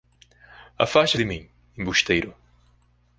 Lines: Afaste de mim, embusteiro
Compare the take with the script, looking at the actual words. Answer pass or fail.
pass